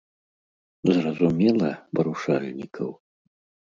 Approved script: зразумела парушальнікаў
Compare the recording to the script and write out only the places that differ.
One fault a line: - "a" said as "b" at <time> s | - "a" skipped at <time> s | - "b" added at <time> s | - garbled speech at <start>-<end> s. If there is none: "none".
none